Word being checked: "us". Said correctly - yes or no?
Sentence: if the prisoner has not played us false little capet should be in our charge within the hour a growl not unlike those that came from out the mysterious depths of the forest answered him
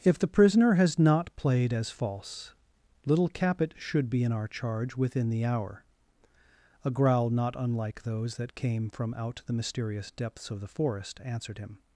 no